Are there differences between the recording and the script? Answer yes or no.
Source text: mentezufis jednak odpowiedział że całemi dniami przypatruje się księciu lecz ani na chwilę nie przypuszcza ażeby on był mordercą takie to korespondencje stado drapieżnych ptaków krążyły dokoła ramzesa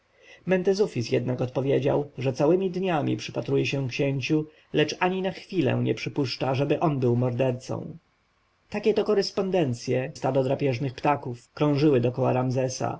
no